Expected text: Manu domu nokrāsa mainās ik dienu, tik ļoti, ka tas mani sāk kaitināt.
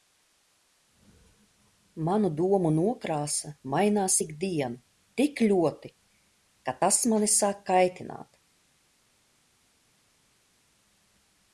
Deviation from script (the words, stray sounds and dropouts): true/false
false